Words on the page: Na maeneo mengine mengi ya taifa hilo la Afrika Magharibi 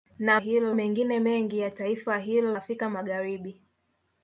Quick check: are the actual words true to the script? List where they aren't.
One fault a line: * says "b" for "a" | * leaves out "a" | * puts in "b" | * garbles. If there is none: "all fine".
* says "hilo" for "maeneo"
* leaves out "la"